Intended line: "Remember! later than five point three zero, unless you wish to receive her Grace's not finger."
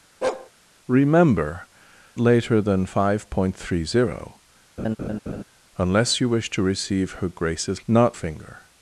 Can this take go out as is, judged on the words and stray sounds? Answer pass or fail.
fail